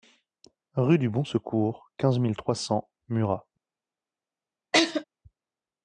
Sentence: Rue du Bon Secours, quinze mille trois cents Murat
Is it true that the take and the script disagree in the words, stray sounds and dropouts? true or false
true